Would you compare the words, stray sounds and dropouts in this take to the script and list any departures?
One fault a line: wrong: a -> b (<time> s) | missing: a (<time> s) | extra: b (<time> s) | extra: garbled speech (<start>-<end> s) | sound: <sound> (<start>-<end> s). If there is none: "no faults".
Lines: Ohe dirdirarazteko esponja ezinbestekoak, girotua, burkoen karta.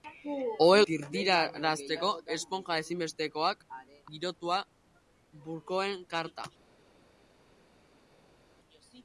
no faults